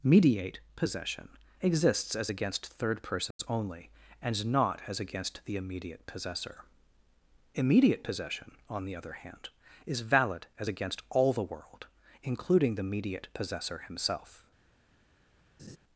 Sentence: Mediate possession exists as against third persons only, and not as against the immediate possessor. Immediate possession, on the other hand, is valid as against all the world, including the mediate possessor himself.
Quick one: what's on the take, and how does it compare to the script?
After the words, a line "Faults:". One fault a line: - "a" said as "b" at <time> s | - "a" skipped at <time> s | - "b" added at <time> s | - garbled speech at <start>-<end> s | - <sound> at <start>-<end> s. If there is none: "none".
Mediate possession exists as against third persons only, and not as against the immediate possessor. Immediate possession, on the other hand, is valid as against all the world, including the mediate possessor himself.
Faults:
- dropout at 3.3-3.4 s
- laugh at 15.6-15.8 s